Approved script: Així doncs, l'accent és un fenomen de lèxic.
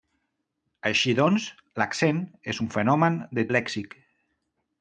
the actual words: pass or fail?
pass